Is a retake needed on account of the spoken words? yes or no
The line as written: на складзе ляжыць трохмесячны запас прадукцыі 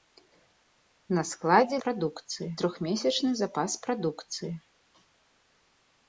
yes